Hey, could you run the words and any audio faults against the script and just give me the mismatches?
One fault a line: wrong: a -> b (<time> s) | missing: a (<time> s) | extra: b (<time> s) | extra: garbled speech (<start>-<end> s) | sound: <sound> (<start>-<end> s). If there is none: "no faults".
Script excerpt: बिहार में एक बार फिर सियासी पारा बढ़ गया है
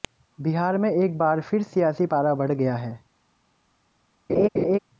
sound: laugh (4.3-4.8 s)